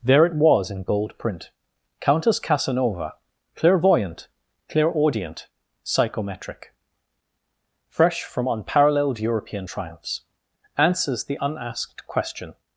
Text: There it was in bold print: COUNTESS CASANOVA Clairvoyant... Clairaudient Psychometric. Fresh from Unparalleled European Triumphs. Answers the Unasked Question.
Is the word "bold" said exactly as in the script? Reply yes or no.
no